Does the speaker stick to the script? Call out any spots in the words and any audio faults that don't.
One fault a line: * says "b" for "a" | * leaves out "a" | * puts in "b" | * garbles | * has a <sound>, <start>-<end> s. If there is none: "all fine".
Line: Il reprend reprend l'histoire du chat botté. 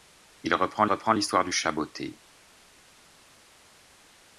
all fine